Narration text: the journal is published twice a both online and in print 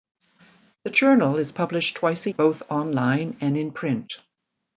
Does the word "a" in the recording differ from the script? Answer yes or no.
no